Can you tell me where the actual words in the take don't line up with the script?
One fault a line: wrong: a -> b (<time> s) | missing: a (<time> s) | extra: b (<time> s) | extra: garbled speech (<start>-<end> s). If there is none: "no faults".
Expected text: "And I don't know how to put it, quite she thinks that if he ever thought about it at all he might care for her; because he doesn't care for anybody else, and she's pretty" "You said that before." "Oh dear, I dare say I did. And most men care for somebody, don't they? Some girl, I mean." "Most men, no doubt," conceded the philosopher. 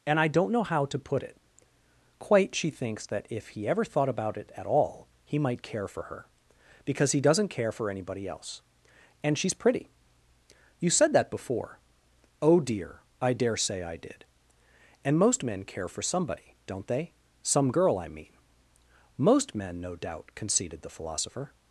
no faults